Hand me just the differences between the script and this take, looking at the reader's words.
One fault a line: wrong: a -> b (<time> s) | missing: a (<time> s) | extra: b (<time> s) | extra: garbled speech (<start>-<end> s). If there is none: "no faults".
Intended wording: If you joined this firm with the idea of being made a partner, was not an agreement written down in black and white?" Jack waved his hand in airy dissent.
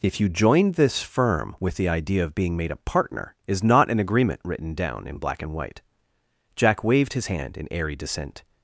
wrong: was -> is (3.5 s)